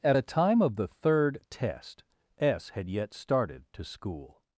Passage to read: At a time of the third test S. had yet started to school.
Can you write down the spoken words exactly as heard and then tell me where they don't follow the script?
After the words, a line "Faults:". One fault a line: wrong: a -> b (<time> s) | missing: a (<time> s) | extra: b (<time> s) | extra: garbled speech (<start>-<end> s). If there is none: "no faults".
At a time of the third test S. had yet started to school.
Faults:
no faults